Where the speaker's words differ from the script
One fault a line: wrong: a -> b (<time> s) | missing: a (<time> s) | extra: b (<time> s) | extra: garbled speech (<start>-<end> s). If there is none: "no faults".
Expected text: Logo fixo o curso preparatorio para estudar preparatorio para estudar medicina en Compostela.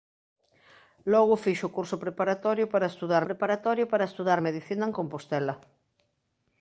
no faults